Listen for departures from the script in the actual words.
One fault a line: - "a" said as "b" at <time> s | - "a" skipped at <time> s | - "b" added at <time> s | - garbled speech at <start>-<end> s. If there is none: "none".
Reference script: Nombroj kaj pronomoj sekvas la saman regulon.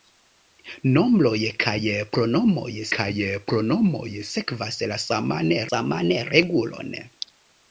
- "kaj pronomoj" added at 3.0 s
- "saman" added at 5.7 s